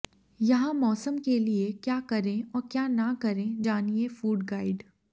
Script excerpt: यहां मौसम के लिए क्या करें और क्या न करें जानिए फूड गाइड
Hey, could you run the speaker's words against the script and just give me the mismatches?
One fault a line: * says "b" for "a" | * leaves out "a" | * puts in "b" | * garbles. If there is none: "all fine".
all fine